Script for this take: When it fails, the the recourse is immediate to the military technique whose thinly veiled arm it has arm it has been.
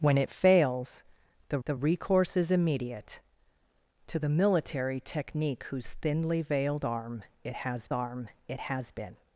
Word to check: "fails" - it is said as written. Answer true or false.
true